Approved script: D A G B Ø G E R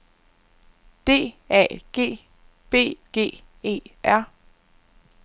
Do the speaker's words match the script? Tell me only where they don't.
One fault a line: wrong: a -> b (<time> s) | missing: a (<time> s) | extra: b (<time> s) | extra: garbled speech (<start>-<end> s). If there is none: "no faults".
missing: Ø (3.0 s)